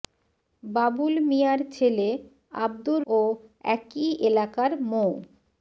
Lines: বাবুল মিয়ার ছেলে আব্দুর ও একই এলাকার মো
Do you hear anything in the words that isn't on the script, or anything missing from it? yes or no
no